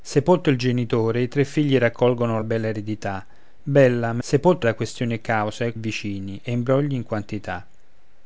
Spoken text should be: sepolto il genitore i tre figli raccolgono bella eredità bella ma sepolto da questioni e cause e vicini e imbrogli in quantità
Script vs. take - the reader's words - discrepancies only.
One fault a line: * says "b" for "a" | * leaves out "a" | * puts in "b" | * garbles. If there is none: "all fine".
all fine